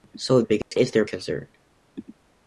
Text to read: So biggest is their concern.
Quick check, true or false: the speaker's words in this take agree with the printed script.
true